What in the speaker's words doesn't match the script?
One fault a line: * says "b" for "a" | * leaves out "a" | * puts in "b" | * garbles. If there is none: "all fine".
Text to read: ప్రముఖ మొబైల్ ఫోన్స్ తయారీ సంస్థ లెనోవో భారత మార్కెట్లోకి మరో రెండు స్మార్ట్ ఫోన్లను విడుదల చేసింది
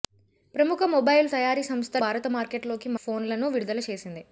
* leaves out "ఫోన్స్"
* leaves out "లెనోవో"
* leaves out "మరో రెండు స్మార్ట్"